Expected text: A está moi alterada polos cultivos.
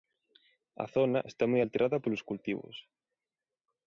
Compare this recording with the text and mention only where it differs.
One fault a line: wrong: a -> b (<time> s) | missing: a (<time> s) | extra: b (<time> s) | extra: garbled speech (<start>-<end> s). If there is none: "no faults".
extra: zona (0.9 s)